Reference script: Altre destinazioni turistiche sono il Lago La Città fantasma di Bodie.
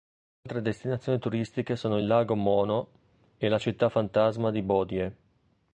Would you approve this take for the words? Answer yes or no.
no